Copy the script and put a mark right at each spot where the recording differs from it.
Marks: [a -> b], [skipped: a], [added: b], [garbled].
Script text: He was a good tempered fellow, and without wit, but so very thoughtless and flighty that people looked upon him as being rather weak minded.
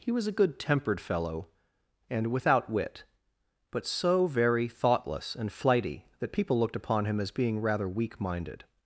He was a good tempered fellow, and without wit, but so very thoughtless and flighty that people looked upon him as being rather weak minded.